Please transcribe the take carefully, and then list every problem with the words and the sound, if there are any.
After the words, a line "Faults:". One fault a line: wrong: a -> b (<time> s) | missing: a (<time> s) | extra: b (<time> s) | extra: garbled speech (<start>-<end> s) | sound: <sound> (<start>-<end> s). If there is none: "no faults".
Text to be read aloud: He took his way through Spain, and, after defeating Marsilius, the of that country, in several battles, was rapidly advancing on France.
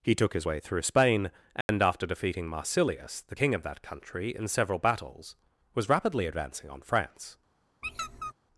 He took his way through Spain, and, after defeating Marsilius, the king of that country, in several battles, was rapidly advancing on France.
Faults:
sound: dropout (1.6-1.7 s)
extra: king (3.3 s)
sound: squeak (7.8-8.3 s)